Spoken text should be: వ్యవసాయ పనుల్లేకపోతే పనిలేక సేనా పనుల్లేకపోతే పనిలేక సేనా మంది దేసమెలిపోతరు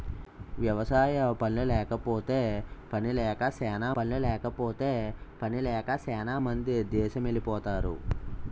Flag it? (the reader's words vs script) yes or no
no